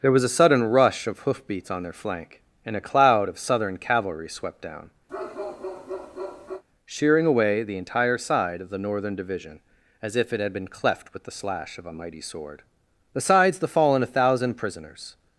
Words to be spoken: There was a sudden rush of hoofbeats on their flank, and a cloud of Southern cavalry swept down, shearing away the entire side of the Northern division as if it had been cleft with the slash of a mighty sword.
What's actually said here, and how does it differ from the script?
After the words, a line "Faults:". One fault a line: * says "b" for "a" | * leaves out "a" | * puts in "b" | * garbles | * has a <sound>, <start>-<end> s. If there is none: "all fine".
There was a sudden rush of hoofbeats on their flank, and a cloud of Southern cavalry swept down, shearing away the entire side of the Northern division as if it had been cleft with the slash of a mighty sword. Besides the fallen a thousand prisoners
Faults:
* has a bark, 5.1-6.6 s
* puts in "Besides the fallen a thousand prisoners"